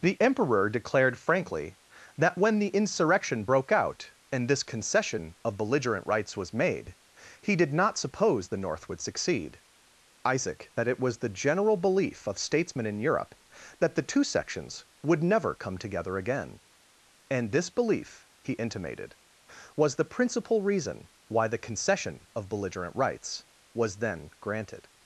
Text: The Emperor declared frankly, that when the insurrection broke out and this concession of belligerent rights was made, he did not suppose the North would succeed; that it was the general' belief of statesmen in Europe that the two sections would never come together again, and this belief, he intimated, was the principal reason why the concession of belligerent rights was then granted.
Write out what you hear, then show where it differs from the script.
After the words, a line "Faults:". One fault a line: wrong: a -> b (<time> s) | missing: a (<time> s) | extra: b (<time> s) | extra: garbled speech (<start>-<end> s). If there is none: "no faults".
The Emperor declared frankly, that when the insurrection broke out and this concession of belligerent rights was made, he did not suppose the North would succeed; isaac that it was the general' belief of statesmen in Europe that the two sections would never come together again, and this belief, he intimated, was the principal reason why the concession of belligerent rights was then granted.
Faults:
extra: isaac (10.2 s)